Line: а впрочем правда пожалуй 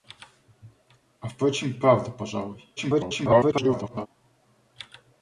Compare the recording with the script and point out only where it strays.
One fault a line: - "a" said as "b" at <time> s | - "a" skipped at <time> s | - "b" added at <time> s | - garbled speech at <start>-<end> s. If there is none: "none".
- garbled speech at 2.8-4.1 s